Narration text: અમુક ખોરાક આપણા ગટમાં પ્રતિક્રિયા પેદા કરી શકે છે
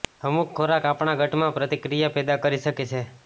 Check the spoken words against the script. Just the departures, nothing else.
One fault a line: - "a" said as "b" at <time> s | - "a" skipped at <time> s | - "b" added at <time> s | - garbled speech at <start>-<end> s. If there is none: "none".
none